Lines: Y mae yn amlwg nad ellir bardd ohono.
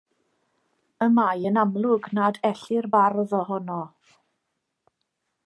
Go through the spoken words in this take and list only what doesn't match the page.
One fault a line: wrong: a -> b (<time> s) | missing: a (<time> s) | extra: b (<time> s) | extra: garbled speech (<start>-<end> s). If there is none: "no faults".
no faults